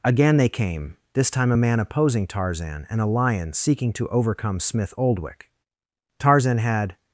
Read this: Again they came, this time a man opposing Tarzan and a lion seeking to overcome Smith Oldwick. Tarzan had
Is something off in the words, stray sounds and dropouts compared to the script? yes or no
no